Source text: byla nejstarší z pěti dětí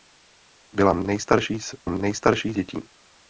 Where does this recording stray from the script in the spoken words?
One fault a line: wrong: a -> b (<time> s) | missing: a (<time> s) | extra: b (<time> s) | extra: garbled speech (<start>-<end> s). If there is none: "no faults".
wrong: pěti -> nejstarší (1.9 s)